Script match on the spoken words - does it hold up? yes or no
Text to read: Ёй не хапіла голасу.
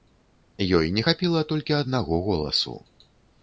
no